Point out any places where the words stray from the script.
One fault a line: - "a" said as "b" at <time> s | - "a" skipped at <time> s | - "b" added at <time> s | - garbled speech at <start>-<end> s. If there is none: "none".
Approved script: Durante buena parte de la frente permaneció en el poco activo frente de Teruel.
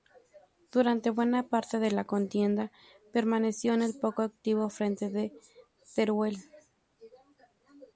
- "frente" said as "contienda" at 2.0 s